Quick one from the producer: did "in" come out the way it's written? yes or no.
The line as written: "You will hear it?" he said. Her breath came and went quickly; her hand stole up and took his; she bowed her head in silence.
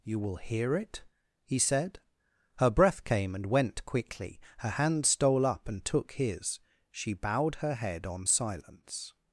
no